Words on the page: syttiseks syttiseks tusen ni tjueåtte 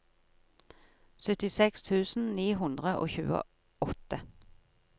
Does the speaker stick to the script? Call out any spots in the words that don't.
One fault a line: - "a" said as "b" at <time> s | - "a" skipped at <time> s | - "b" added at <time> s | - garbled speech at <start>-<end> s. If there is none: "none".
- "syttiseks" skipped at 1.8 s
- "hundre og" added at 2.6 s